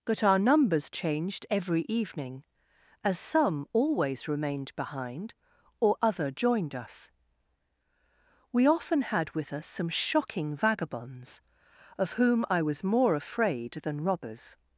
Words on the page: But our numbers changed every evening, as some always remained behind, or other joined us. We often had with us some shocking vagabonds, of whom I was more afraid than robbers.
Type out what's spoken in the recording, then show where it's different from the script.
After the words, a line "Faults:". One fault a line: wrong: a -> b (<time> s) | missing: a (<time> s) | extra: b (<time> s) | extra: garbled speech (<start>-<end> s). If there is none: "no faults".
But our numbers changed every evening, as some always remained behind, or other joined us. We often had with us some shocking vagabonds, of whom I was more afraid than robbers.
Faults:
no faults